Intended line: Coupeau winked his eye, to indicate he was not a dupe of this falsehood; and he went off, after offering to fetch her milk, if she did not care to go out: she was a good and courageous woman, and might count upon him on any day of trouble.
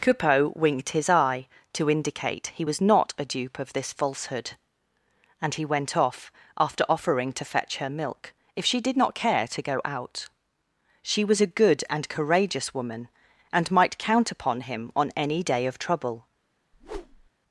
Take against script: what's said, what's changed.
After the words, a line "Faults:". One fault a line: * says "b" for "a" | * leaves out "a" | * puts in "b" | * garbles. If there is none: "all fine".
Coupeau winked his eye, to indicate he was not a dupe of this falsehood; and he went off, after offering to fetch her milk, if she did not care to go out: she was a good and courageous woman, and might count upon him on any day of trouble.
Faults:
all fine